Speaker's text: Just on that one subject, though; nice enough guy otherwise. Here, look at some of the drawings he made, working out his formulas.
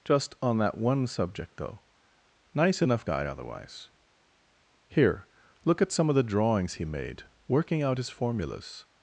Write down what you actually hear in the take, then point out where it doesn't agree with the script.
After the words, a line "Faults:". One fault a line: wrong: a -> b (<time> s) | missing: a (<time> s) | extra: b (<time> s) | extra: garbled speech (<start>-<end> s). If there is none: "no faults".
Just on that one subject, though; nice enough guy otherwise. Here, look at some of the drawings he made, working out his formulas.
Faults:
no faults